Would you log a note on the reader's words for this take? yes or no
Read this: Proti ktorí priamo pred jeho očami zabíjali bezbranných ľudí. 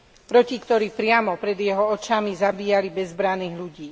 no